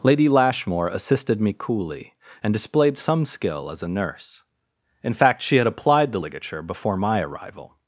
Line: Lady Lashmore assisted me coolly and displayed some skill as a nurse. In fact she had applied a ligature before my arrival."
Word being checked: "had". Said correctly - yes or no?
yes